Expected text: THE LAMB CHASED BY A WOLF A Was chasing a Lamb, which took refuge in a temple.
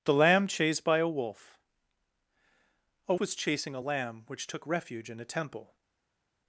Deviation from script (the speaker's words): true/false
false